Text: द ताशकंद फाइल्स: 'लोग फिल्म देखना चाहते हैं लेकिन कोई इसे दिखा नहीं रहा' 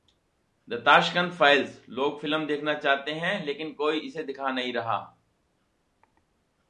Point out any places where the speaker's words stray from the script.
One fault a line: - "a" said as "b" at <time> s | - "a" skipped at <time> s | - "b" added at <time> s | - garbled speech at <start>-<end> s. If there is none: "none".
none